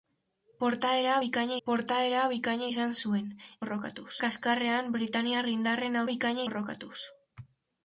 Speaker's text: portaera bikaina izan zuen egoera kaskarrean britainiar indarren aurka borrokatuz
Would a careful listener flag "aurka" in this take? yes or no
yes